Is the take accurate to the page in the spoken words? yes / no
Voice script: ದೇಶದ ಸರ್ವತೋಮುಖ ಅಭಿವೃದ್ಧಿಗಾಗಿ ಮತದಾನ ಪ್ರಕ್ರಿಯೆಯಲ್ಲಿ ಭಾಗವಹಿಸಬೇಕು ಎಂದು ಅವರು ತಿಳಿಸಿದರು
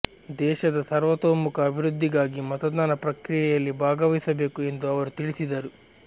yes